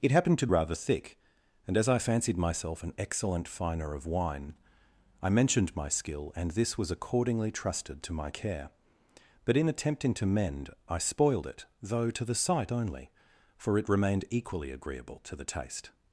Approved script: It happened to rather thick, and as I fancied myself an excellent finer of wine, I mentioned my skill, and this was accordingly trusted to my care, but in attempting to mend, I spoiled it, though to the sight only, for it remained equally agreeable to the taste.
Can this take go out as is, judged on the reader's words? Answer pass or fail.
pass